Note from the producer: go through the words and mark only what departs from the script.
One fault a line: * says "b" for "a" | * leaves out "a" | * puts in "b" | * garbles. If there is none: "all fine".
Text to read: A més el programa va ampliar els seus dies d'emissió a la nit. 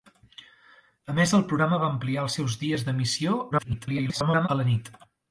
* garbles